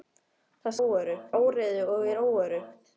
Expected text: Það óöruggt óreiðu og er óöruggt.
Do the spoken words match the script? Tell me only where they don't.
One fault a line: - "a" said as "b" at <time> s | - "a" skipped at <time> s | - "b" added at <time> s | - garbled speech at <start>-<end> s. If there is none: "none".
none